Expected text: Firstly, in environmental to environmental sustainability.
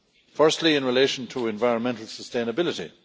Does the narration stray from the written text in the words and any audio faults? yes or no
yes